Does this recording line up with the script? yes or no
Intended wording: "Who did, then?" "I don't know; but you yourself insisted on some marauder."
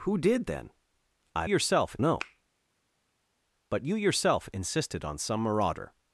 no